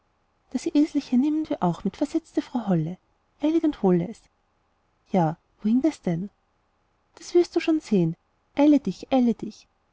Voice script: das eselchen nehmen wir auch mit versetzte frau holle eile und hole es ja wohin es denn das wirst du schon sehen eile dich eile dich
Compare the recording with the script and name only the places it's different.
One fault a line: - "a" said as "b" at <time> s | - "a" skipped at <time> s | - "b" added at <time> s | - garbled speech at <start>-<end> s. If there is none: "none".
none